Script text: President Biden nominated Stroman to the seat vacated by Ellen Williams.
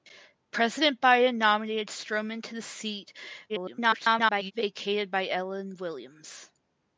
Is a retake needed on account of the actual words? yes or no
yes